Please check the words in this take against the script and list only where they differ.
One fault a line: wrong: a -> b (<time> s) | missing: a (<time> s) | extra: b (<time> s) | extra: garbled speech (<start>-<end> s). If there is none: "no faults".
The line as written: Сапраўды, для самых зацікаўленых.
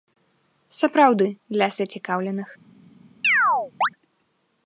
missing: самых (1.7 s)